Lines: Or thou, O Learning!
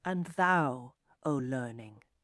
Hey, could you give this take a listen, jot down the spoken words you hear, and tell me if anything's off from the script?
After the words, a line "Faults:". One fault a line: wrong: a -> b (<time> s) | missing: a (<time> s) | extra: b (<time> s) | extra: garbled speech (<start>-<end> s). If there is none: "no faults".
And thou, O Learning!
Faults:
wrong: Or -> And (0.0 s)